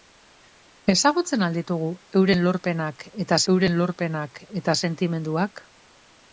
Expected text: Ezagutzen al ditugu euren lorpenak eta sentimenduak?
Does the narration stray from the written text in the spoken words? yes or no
yes